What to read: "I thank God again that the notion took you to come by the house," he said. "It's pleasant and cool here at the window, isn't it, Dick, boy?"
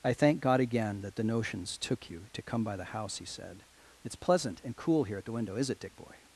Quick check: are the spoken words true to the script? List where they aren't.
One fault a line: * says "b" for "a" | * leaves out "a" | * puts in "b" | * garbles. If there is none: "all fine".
* says "notions" for "notion"
* says "is" for "isn't"